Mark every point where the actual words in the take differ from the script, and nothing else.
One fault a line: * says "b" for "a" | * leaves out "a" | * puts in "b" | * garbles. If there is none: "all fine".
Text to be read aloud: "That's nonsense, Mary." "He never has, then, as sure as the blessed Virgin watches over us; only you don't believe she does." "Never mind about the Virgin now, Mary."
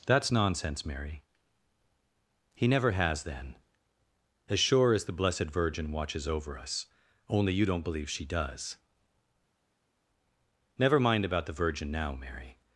all fine